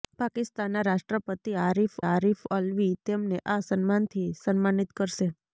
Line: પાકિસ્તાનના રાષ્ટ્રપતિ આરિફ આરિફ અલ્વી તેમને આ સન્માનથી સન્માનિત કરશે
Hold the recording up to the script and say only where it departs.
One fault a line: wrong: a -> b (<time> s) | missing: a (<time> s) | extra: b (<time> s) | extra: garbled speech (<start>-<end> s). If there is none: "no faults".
no faults